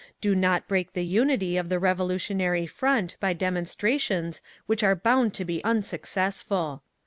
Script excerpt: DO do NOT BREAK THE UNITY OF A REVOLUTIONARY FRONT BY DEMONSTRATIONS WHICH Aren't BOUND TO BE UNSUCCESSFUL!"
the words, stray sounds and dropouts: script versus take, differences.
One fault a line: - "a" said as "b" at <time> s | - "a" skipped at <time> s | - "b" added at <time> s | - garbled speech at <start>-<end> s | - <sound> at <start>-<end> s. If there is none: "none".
- "do" skipped at 0.3 s
- "A" said as "THE" at 1.7 s
- "Aren't" said as "ARE" at 4.8 s